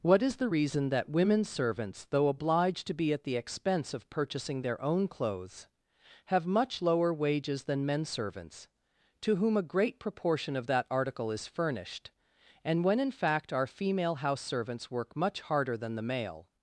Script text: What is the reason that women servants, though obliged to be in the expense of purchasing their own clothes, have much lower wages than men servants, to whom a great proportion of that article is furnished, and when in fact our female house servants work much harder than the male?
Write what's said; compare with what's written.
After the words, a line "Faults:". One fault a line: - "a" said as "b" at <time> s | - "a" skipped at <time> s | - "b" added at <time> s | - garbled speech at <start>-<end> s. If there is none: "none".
What is the reason that women servants, though obliged to be at the expense of purchasing their own clothes, have much lower wages than men servants, to whom a great proportion of that article is furnished, and when in fact our female house servants work much harder than the male?
Faults:
- "in" said as "at" at 3.1 s